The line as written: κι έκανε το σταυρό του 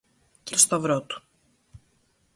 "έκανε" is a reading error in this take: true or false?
true